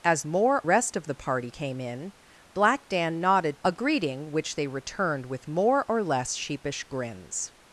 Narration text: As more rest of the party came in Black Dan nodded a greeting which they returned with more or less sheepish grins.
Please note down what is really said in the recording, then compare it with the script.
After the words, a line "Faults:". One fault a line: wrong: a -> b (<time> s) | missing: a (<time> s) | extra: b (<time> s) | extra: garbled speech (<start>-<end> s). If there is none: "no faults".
As more rest of the party came in Black Dan nodded a greeting which they returned with more or less sheepish grins.
Faults:
no faults